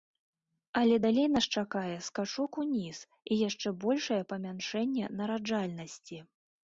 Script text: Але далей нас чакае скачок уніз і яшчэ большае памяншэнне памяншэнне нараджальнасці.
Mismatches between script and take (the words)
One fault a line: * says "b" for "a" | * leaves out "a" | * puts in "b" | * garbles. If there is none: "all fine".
* leaves out "памяншэнне"